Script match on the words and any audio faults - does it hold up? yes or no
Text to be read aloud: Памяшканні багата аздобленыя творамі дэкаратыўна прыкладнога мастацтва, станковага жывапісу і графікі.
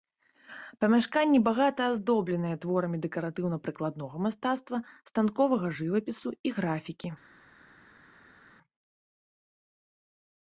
yes